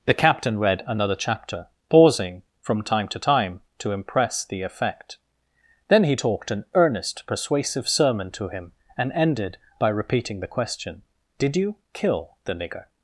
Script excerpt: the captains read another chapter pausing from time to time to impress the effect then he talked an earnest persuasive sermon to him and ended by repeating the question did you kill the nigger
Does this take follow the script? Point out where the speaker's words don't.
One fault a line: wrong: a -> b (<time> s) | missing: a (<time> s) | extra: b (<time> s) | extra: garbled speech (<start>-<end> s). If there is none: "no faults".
wrong: captains -> captain (0.1 s)